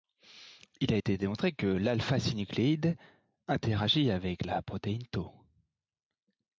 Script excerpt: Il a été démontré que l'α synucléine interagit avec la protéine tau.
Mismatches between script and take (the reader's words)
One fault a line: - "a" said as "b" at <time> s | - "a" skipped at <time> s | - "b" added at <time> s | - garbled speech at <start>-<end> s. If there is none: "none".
none